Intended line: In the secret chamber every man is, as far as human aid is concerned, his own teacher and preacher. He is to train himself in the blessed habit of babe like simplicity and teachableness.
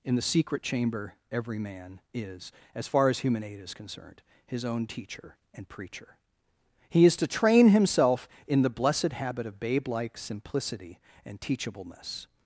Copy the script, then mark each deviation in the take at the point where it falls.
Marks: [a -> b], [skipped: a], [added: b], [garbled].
In the secret chamber every man is, as far as human aid is concerned, his own teacher and preacher. He is to train himself in the blessed habit of babe like simplicity and teachableness.